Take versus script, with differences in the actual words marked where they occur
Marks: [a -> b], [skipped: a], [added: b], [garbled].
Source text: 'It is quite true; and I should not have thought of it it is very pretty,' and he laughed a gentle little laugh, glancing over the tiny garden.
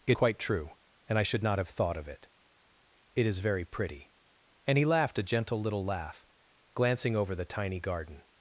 'It [skipped: is] quite true; and I should not have thought of it it is very pretty,' and he laughed a gentle little laugh, glancing over the tiny garden.